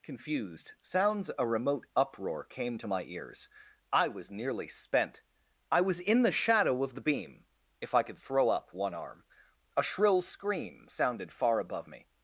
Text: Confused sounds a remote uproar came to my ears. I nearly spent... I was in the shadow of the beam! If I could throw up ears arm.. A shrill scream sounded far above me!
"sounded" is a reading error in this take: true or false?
false